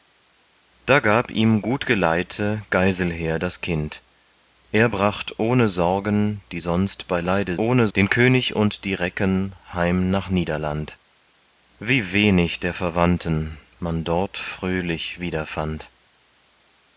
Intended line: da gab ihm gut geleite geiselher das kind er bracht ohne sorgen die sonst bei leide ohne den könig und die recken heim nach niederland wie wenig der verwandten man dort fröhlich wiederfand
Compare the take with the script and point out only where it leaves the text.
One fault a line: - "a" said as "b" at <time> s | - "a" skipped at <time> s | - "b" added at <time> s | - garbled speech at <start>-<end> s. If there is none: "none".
none